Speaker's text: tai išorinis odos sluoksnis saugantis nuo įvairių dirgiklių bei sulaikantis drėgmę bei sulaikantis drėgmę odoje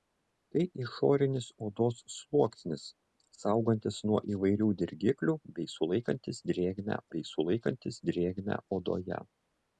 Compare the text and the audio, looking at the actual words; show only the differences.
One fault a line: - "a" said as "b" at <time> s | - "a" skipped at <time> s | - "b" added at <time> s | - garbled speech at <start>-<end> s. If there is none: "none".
none